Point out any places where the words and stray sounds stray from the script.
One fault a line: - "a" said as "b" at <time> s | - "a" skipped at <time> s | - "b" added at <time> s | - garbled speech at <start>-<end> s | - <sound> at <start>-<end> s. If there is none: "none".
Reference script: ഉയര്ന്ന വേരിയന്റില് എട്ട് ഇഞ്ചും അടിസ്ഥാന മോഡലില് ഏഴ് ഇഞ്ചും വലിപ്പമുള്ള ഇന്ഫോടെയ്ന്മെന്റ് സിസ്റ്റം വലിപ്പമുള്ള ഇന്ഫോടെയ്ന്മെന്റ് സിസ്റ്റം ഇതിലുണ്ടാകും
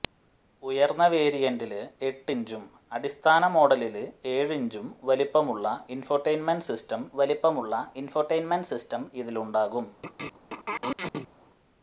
- throat clearing at 10.0-11.3 s